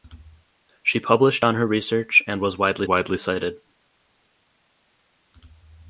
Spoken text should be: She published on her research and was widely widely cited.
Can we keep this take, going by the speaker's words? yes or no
yes